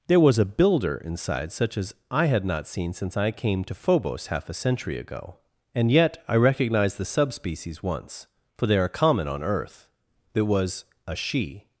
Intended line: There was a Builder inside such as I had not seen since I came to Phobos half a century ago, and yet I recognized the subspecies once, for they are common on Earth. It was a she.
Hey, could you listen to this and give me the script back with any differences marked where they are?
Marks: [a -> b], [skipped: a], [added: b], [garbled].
There was a Builder inside such as I had not seen since I came to Phobos half a century ago, and yet I recognized the subspecies once, for they are common on Earth. It was a she.